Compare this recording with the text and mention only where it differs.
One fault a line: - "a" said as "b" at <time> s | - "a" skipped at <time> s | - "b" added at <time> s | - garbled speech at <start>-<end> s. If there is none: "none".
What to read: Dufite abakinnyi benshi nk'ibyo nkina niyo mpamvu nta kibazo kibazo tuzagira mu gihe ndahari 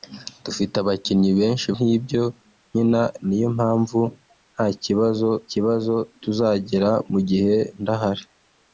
none